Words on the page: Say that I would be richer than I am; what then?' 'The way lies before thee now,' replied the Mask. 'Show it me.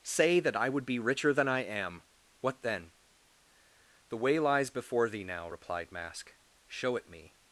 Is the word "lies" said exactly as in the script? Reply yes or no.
yes